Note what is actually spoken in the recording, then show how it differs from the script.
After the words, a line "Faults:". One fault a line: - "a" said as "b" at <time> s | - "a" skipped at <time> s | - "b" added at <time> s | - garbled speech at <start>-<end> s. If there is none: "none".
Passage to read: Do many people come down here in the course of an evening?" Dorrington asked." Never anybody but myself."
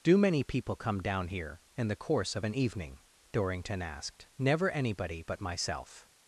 Do many people come down here in the course of an evening?" Dorrington asked." Never anybody but myself."
Faults:
none